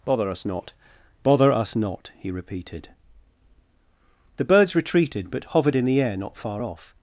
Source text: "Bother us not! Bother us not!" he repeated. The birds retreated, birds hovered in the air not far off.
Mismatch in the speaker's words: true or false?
true